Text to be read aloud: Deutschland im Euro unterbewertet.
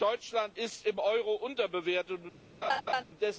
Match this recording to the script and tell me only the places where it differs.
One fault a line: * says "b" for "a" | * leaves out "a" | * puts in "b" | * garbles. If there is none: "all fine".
* puts in "ist"